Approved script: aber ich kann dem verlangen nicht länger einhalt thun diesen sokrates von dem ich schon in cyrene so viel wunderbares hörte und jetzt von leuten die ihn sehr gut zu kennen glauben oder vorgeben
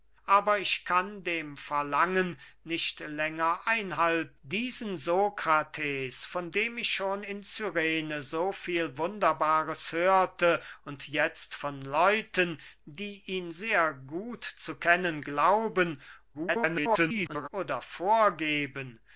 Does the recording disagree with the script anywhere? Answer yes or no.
yes